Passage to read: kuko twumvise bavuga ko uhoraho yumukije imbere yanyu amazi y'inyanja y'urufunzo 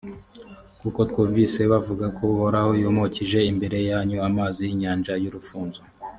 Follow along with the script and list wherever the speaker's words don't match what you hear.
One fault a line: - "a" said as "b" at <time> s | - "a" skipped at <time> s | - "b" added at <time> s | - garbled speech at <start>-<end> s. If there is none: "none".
none